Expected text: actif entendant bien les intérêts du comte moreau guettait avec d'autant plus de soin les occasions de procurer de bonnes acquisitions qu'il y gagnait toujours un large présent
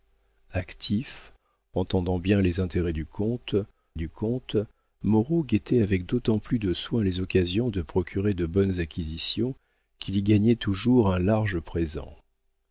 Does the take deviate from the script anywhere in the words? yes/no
yes